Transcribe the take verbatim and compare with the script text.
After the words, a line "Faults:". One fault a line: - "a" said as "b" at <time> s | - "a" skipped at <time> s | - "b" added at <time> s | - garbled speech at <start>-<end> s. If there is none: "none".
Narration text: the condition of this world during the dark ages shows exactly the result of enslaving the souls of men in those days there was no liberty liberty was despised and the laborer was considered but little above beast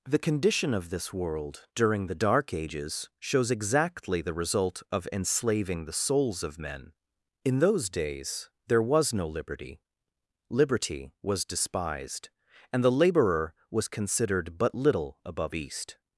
the condition of this world during the dark ages shows exactly the result of enslaving the souls of men in those days there was no liberty liberty was despised and the laborer was considered but little above beast
Faults:
none